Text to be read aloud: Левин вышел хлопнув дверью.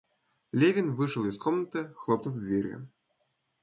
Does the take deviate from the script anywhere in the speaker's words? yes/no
yes